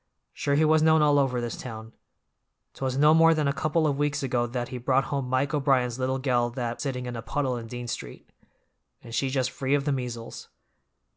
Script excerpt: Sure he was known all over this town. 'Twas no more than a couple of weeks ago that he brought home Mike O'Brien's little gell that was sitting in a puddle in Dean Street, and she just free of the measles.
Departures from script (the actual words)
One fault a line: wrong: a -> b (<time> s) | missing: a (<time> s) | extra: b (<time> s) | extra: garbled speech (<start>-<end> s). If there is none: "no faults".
missing: was (6.8 s)